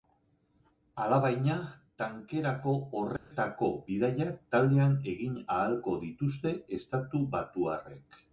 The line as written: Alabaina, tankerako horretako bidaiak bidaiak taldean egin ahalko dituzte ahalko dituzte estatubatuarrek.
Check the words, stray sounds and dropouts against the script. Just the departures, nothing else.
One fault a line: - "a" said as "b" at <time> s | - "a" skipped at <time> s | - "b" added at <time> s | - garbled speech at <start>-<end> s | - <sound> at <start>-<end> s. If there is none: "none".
- dropout at 3.2-3.3 s
- "bidaiak" skipped at 4.4 s
- "ahalko dituzte" skipped at 6.5 s